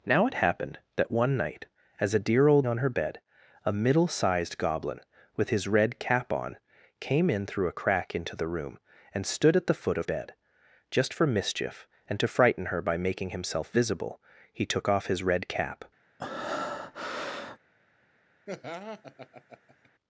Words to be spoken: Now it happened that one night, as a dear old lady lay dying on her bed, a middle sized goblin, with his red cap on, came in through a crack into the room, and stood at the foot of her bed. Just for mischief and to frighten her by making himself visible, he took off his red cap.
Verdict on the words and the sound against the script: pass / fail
fail